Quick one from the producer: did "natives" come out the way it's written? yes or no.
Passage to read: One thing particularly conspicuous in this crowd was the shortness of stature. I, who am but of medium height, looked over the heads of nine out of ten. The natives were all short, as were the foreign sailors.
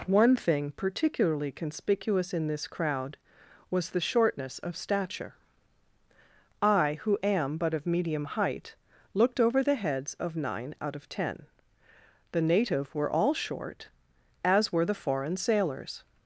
no